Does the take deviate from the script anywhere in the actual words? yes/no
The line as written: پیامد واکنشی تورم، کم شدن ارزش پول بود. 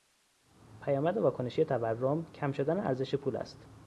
yes